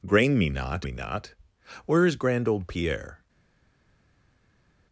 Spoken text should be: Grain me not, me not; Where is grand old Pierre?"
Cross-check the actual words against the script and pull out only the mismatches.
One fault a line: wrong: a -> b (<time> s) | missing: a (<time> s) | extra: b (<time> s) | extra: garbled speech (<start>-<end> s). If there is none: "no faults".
no faults